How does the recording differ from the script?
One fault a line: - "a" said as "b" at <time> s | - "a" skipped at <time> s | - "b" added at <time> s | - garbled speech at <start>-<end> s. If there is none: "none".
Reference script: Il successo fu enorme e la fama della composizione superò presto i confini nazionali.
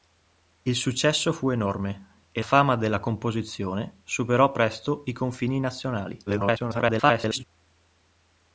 - "la" skipped at 2.4 s
- garbled speech at 6.3-7.4 s